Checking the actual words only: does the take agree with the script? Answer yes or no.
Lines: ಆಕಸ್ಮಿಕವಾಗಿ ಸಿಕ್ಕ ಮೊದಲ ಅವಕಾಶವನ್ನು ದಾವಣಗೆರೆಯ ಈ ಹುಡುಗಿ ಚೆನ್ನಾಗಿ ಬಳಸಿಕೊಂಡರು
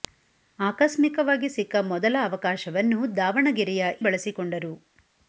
no